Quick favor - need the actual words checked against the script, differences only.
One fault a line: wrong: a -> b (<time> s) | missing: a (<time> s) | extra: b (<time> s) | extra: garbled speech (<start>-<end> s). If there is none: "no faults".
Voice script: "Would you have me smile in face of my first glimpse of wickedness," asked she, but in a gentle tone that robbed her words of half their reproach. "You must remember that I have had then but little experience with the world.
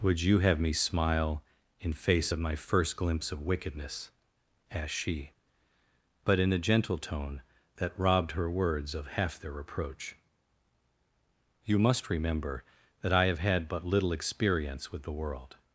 missing: then (13.7 s)